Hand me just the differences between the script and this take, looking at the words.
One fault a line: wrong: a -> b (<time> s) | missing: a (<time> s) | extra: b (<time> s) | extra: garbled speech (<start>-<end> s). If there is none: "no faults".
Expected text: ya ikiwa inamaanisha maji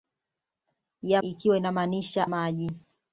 no faults